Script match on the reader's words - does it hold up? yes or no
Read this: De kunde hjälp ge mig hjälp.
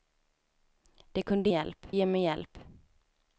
yes